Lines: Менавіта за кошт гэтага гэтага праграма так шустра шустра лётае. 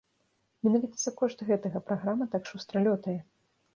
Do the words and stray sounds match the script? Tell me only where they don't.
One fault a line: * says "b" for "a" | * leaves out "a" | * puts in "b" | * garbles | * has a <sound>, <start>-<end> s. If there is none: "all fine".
* leaves out "гэтага"
* leaves out "шустра"